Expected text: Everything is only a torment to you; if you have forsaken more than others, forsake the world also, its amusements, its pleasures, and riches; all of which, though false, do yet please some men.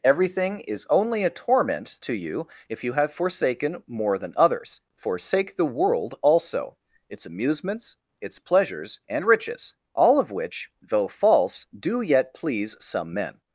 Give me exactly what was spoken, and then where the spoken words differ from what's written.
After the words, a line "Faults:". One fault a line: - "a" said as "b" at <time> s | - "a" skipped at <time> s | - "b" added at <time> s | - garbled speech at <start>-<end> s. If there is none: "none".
Everything is only a torment to you; if you have forsaken more than others, forsake the world also, its amusements, its pleasures, and riches; all of which, though false, do yet please some men.
Faults:
none